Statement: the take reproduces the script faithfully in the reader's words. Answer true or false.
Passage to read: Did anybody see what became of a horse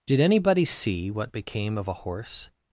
true